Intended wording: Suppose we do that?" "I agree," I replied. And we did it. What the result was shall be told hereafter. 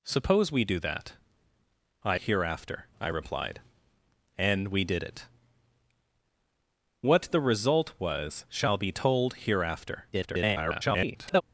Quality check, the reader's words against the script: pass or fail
fail